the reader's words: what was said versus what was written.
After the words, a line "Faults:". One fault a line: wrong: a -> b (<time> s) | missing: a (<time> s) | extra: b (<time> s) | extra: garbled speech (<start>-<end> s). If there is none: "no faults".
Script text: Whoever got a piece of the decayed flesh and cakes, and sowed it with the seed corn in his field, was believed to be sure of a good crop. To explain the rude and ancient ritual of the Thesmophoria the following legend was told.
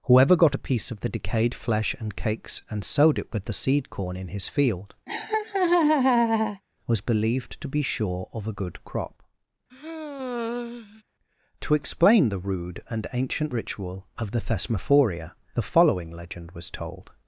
Whoever got a piece of the decayed flesh and cakes, and sowed it with the seed corn in his field, was believed to be sure of a good crop. To explain the rude and ancient ritual of the Thesmophoria the following legend was told.
Faults:
no faults